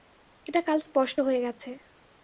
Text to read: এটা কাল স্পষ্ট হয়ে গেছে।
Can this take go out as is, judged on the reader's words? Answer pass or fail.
pass